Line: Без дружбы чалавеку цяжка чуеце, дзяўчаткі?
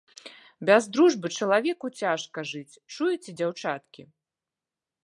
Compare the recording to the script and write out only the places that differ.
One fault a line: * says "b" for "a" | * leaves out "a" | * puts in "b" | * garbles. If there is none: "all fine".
* puts in "жыць"